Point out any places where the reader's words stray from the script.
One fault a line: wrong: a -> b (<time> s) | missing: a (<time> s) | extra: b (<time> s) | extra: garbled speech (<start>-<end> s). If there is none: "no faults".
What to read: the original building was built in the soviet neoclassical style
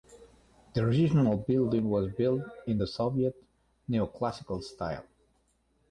no faults